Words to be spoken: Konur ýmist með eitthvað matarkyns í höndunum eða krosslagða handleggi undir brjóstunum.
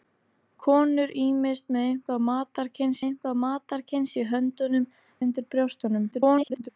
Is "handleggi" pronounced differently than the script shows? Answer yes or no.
yes